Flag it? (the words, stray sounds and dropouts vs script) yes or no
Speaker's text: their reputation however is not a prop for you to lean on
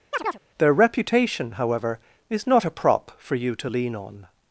yes